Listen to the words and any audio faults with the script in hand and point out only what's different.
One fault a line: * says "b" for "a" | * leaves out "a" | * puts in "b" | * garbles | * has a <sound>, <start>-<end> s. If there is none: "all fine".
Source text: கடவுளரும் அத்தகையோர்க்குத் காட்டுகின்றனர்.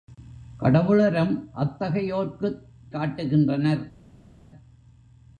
all fine